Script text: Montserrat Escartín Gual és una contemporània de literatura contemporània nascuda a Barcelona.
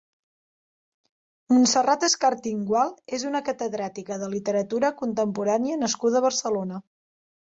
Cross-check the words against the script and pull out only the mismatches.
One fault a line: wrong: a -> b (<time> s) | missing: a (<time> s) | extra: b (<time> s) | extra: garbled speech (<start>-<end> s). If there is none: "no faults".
wrong: contemporània -> catedràtica (3.5 s)